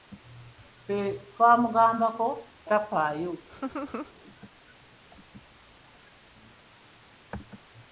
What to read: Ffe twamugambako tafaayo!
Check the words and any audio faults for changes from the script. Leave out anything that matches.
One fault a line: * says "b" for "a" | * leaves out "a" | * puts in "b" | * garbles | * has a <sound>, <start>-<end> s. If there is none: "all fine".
* has a laugh, 3.5-4.1 s